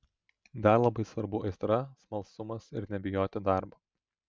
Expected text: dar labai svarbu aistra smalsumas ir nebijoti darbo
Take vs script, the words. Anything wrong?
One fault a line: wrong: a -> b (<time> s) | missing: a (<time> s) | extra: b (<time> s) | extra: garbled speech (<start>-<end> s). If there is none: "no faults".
no faults